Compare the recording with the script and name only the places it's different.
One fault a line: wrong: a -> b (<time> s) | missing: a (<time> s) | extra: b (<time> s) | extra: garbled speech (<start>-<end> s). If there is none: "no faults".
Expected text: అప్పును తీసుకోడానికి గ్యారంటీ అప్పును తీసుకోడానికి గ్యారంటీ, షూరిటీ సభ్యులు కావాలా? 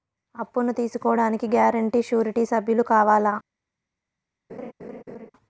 missing: అప్పును తీసుకోడానికి గ్యారంటీ (2.0 s)